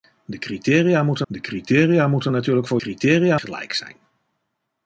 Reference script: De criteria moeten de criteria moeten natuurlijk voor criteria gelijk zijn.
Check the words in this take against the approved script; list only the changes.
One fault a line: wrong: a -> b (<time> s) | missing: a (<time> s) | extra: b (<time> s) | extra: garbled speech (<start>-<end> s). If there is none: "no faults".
no faults